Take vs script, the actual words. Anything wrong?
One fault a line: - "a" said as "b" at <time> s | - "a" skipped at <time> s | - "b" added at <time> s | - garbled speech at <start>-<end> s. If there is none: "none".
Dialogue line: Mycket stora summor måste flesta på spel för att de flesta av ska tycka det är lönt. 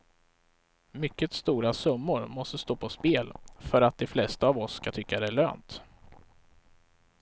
- "flesta" said as "stå" at 2.6 s
- "oss" added at 4.6 s